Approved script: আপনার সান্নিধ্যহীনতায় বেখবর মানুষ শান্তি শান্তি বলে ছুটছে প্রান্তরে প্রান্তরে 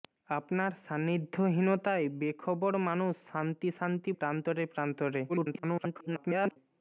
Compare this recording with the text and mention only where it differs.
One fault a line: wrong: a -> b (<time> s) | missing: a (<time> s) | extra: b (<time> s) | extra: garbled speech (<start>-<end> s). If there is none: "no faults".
missing: বলে ছুটছে (4.1 s)
extra: garbled speech (5.3-6.6 s)